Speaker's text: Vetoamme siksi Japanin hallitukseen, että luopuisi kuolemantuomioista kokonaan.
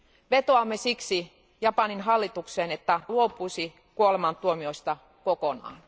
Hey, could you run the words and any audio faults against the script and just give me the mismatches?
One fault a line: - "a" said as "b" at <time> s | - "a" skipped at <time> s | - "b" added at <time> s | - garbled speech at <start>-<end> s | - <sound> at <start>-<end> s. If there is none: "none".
none